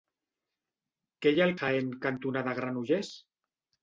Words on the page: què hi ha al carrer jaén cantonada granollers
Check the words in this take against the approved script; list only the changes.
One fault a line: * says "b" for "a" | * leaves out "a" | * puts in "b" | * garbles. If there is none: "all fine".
* leaves out "carrer"